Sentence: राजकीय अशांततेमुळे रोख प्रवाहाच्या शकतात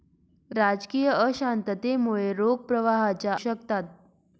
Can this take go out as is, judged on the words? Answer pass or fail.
pass